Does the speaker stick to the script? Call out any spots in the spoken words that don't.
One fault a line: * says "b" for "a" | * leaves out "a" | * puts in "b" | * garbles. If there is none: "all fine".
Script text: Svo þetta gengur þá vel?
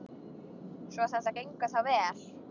all fine